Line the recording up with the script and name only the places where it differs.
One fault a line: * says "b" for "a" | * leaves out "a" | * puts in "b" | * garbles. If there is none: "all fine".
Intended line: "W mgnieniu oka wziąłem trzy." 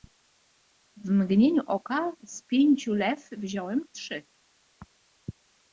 * puts in "z pięciu lew"